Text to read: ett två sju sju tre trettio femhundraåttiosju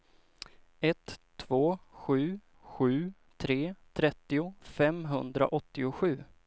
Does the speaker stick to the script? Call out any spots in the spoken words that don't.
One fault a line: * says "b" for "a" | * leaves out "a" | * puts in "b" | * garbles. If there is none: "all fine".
all fine